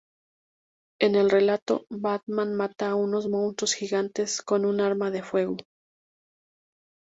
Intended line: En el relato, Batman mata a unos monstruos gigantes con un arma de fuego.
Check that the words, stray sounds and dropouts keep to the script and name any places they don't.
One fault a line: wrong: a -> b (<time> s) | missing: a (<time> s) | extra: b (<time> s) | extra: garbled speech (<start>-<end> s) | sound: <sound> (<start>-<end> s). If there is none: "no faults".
no faults